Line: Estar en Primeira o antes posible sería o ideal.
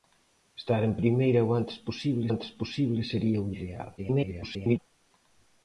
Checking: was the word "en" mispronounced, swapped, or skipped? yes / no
no